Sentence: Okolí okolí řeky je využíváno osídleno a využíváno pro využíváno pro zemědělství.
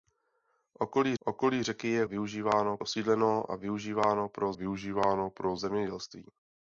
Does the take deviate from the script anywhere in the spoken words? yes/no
no